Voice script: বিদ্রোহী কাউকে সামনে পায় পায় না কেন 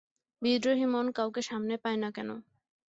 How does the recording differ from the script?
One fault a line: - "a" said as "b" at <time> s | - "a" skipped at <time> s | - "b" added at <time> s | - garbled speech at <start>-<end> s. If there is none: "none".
- "মন" added at 0.8 s
- "পায়" skipped at 2.0 s